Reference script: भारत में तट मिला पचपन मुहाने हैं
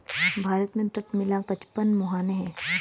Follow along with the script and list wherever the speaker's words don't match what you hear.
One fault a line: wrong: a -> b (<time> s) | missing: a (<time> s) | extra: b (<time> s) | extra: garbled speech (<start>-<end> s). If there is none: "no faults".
no faults